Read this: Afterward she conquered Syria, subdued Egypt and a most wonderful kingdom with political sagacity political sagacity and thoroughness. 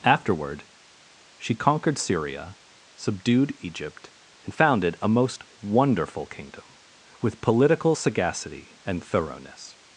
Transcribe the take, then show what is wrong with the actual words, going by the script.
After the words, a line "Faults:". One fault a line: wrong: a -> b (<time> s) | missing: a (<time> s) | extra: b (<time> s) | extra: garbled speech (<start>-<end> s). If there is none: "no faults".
Afterward she conquered Syria, subdued Egypt and founded a most wonderful kingdom with political sagacity and thoroughness.
Faults:
extra: founded (4.5 s)
missing: political sagacity (8.8 s)